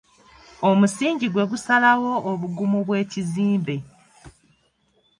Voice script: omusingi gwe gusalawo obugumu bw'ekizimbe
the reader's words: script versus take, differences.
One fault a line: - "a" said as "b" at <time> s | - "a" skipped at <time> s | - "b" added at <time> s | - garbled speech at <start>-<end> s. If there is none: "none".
none